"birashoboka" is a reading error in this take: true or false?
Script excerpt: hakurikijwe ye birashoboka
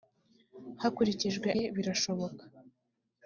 false